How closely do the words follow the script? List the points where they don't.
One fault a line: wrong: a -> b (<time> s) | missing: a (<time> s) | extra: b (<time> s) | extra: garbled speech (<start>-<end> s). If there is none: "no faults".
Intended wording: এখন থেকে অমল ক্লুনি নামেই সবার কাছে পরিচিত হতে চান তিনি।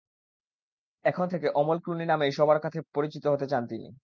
no faults